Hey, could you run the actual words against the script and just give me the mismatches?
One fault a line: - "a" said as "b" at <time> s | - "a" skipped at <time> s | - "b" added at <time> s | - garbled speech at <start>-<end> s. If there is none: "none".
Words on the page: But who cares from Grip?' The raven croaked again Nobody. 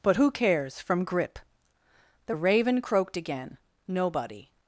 none